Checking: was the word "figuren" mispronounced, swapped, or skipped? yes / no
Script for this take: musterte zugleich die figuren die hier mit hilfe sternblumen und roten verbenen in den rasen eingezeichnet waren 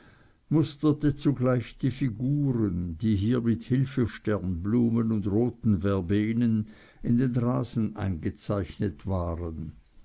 no